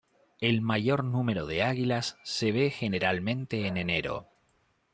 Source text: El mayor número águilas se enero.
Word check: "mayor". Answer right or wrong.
right